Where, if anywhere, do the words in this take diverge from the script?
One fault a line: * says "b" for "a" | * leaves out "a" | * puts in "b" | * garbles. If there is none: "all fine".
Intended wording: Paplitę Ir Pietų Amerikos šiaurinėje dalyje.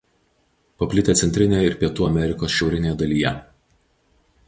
* puts in "Centrinėje"